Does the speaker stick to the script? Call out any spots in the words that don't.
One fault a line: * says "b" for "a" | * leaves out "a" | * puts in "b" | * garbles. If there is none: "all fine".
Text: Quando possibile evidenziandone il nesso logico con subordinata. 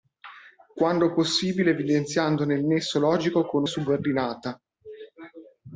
all fine